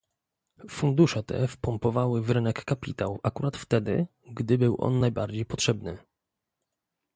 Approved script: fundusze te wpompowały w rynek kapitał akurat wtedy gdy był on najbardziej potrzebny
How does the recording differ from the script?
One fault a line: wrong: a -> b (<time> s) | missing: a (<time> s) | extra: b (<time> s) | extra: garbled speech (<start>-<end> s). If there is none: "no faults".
no faults